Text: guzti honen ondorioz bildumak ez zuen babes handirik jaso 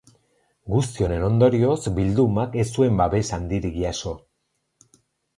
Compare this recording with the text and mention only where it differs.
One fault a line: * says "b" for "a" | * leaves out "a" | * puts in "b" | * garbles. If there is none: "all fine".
all fine